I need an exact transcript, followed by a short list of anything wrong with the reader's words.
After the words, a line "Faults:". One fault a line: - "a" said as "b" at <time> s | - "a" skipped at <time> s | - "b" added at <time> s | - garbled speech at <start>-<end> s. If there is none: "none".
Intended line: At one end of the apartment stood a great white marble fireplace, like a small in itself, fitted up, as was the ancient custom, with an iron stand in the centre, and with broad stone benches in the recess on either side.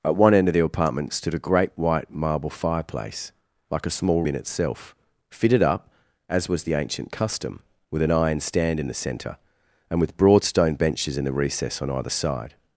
At one end of the apartment stood a great white marble fireplace, like a small in itself, fitted up, as was the ancient custom, with an iron stand in the centre, and with broad stone benches in the recess on either side.
Faults:
none